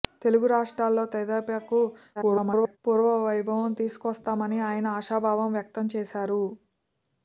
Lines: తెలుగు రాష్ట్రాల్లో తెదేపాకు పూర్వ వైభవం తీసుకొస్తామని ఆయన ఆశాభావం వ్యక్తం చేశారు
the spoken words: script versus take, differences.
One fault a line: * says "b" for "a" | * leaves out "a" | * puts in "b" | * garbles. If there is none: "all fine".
* garbles